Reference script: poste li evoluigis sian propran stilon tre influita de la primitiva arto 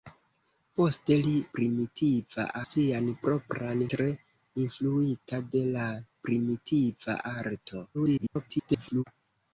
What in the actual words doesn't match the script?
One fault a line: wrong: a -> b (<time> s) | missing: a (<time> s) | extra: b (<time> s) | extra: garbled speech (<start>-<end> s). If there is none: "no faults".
wrong: evoluigis -> primitiva (1.6 s)
missing: stilon (3.8 s)
extra: garbled speech (7.9-9.0 s)